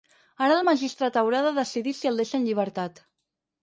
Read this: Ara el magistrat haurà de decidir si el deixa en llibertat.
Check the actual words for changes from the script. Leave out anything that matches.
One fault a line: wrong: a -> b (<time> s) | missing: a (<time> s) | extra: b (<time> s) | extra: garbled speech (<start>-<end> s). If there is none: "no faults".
no faults